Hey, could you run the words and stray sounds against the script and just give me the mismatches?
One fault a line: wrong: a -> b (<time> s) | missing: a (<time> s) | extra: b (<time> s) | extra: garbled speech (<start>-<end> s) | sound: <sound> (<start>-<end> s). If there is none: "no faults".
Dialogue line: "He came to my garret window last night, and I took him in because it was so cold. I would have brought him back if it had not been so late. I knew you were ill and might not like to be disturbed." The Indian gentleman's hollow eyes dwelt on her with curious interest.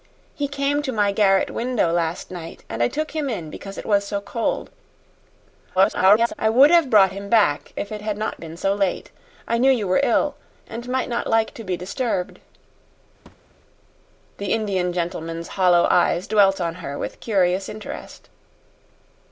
extra: garbled speech (5.8-6.3 s)
sound: thud (13.3-13.6 s)